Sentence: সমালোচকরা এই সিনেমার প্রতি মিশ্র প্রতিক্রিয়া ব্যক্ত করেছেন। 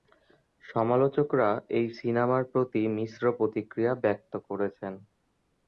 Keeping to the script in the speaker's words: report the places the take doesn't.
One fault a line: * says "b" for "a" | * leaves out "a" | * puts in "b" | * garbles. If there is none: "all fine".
all fine